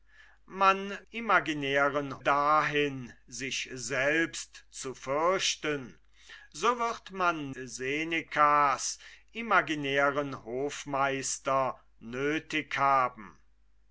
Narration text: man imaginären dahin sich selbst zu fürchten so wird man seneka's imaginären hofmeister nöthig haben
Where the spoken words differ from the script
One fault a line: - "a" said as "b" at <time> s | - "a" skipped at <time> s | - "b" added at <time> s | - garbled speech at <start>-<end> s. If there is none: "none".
none